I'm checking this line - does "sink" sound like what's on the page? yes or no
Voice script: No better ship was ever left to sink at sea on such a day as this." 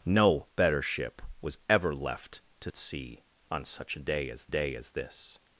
no